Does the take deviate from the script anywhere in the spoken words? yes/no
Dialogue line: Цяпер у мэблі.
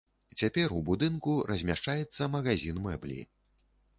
yes